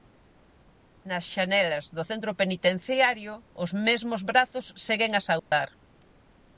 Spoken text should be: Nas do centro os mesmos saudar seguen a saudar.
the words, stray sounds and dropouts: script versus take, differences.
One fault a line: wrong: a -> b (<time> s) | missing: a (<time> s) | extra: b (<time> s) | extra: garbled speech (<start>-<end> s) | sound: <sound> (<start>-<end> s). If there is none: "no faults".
extra: xanelas (1.3 s)
extra: penitenciario (2.4 s)
wrong: saudar -> brazos (4.3 s)
sound: dropout (5.4-5.5 s)